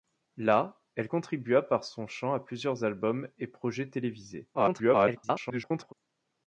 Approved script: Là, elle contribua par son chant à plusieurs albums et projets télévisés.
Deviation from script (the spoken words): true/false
true